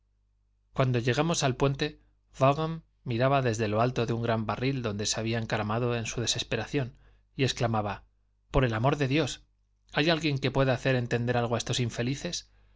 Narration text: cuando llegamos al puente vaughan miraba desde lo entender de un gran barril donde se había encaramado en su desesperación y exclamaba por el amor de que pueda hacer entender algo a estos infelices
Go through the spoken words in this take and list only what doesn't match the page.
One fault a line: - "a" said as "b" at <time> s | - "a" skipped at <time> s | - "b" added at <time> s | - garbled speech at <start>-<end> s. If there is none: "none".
- "entender" said as "alto" at 3.8 s
- "dios hay alguien" added at 9.1 s